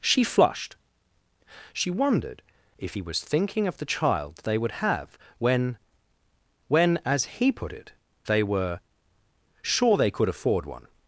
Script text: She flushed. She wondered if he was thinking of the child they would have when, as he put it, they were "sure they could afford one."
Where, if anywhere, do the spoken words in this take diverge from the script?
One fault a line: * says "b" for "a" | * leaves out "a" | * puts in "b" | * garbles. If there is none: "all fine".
* puts in "when"